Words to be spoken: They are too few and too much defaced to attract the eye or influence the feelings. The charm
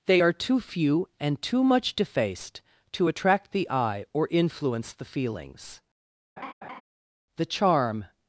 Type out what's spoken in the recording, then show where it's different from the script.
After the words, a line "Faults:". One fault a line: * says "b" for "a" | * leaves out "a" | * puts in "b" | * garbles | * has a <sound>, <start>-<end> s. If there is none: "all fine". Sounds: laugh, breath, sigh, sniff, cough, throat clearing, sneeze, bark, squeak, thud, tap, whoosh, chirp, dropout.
They are too few and too much defaced to attract the eye or influence the feelings. The charm
Faults:
* has a laugh, 6.4-6.8 s